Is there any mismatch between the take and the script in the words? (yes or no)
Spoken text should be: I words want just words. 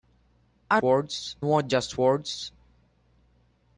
no